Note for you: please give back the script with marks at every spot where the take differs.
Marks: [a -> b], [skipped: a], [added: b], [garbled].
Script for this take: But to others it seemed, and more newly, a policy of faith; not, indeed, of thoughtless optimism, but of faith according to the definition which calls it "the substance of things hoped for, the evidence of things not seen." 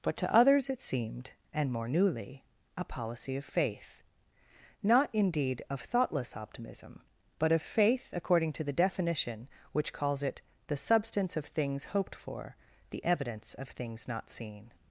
But to others it seemed, and more newly, a policy of faith; not, indeed, of thoughtless optimism, but of faith according to the definition which calls it "the substance of things hoped for, the evidence of things not seen."